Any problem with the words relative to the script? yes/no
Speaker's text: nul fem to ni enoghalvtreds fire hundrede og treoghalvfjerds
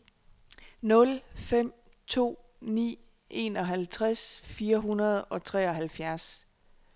no